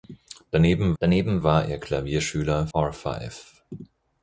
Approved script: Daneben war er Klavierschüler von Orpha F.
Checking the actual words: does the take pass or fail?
fail